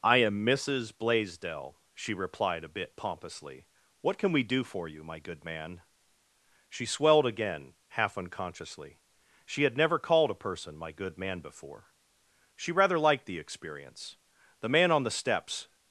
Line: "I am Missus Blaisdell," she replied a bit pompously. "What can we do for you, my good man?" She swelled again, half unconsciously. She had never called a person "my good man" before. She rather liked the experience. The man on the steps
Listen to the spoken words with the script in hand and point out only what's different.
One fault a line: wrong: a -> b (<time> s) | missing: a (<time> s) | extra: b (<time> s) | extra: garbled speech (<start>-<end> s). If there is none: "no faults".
no faults